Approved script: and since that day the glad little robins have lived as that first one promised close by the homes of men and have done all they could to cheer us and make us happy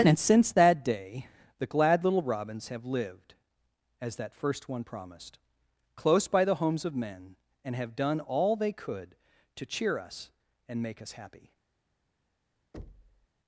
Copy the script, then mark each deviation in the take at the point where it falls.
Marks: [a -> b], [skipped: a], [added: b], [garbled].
and since that day the glad little robins have lived as that first one promised close by the homes of men and have done all they could to cheer us and make us happy